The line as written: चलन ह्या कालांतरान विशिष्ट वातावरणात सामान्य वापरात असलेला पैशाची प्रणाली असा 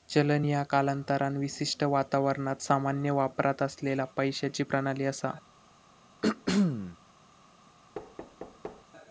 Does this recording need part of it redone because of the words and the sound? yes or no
yes